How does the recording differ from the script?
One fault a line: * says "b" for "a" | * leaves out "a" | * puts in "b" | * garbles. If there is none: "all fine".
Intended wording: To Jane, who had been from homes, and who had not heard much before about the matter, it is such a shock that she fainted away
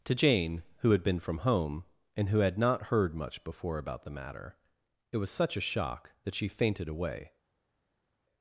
* says "home" for "homes"
* says "was" for "is"